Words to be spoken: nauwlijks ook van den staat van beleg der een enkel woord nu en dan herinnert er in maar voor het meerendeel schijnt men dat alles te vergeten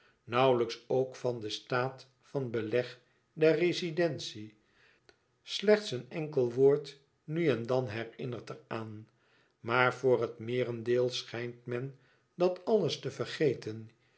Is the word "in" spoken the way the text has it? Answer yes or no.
no